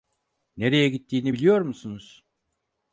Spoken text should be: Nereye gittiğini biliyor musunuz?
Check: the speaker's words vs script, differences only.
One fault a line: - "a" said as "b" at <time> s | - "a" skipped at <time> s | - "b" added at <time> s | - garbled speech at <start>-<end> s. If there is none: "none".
none